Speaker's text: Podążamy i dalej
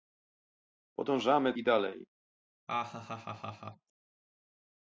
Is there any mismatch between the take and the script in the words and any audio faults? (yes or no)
yes